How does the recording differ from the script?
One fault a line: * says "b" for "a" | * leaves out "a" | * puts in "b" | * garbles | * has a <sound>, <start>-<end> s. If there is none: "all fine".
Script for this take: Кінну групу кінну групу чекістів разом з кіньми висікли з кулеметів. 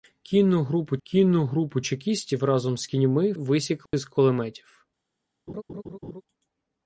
* has a dropout, 3.9-3.9 s
* has a laugh, 5.5-6.2 s